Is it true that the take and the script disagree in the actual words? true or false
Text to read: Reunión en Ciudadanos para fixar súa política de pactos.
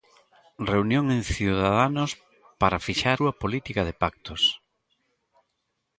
false